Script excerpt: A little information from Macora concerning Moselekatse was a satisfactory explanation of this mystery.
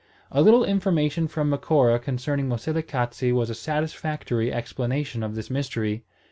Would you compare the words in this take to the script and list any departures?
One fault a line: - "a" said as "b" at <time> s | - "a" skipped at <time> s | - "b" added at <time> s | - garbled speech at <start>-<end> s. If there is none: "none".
none